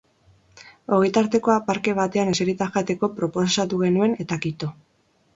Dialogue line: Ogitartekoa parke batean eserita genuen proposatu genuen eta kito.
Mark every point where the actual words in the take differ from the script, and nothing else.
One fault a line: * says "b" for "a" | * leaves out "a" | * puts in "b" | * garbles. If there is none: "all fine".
* says "jateko" for "genuen"